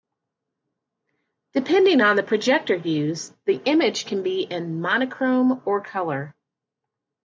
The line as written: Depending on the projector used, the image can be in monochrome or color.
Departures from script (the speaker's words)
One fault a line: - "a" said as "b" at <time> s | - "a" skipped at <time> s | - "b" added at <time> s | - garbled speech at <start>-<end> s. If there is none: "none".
none